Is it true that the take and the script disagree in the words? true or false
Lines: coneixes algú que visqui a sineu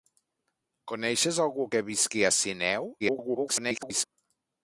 true